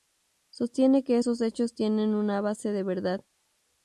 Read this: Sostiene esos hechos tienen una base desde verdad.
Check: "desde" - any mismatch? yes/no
yes